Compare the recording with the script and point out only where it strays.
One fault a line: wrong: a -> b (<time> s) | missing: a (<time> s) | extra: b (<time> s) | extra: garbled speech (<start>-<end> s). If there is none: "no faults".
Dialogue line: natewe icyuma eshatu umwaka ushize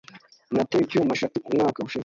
no faults